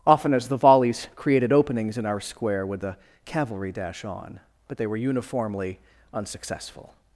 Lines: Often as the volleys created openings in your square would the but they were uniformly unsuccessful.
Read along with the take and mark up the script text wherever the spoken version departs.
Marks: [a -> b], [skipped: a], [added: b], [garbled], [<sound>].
Often as the volleys created openings in [your -> our] square would the [added: cavalry dash on] but they were uniformly unsuccessful.